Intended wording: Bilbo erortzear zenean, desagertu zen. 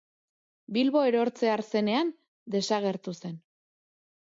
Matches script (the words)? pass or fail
pass